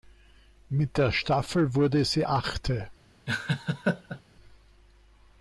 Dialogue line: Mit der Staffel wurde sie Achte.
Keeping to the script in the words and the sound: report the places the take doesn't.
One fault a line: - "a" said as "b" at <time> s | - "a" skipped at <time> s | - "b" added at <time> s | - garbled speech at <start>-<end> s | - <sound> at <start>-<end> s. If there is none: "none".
- laugh at 3.3-4.2 s